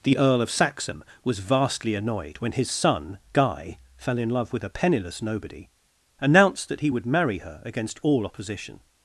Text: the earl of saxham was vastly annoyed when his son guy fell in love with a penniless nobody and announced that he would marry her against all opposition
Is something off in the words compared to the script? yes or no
yes